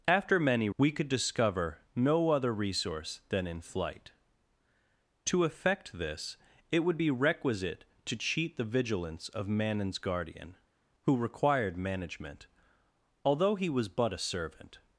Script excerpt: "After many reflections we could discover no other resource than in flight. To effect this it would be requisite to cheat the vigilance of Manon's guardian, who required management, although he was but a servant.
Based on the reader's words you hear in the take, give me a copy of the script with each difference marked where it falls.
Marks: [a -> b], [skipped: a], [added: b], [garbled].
"After many [skipped: reflections] we could discover no other resource than in flight. To effect this it would be requisite to cheat the vigilance of Manon's guardian, who required management, although he was but a servant.